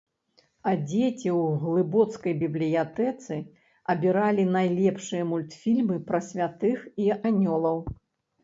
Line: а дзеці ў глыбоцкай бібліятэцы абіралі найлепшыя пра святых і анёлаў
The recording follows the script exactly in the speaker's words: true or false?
false